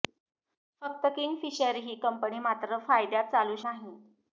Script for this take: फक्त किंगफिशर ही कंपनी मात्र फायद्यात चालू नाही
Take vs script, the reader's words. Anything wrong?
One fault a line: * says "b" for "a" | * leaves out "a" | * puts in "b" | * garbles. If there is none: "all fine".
all fine